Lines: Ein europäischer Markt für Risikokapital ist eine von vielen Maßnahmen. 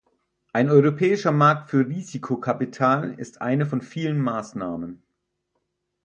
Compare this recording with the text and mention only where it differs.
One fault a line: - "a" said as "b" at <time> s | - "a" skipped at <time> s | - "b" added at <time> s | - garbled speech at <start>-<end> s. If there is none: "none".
none